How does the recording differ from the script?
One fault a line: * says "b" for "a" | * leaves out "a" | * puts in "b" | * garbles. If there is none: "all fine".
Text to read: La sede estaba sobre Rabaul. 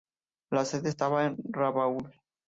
* says "en" for "sobre"